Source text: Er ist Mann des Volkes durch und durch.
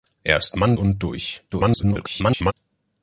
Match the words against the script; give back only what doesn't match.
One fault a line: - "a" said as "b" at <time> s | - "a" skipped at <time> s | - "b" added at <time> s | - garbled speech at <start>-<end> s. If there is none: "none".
- "des Volkes durch" skipped at 0.8 s
- garbled speech at 1.5-2.5 s